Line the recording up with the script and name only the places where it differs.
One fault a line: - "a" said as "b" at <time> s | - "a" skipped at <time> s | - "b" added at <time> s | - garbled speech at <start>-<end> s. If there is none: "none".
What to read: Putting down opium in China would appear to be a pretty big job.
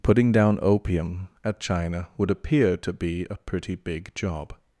- "in" said as "at" at 1.4 s